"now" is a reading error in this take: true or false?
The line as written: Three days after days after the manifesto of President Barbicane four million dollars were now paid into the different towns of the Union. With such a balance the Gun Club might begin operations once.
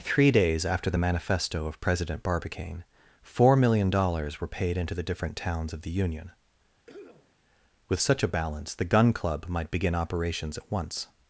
true